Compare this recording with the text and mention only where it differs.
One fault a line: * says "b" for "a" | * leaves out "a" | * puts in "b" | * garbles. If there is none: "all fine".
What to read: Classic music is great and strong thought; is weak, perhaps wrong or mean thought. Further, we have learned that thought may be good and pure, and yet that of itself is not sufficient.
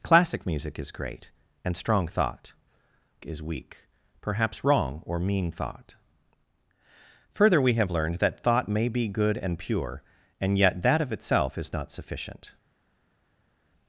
all fine